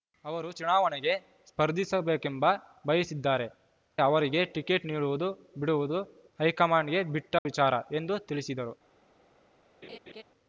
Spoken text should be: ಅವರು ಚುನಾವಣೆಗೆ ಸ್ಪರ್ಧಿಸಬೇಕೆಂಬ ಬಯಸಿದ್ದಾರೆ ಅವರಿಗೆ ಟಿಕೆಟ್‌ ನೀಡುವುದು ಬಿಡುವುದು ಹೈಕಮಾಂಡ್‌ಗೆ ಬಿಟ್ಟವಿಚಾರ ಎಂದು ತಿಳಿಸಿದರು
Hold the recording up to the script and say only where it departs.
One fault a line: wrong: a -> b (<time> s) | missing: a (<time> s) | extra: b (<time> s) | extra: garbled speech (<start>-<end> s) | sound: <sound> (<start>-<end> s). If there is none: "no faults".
sound: dropout (7.4-7.5 s)
sound: laugh (9.8-10.2 s)